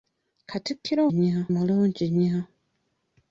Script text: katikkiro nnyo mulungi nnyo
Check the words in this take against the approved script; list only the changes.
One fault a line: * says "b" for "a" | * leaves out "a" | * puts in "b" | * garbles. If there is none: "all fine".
all fine